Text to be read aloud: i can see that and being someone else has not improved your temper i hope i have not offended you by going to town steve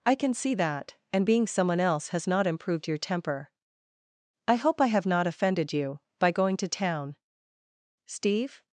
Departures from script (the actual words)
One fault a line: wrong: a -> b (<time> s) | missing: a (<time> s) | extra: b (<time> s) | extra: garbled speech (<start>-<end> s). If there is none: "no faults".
no faults